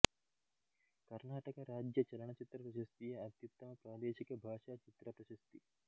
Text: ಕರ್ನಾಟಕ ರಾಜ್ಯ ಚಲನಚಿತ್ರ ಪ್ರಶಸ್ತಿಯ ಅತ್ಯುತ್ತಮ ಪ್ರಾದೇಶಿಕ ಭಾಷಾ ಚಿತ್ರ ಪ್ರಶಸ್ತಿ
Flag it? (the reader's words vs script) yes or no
no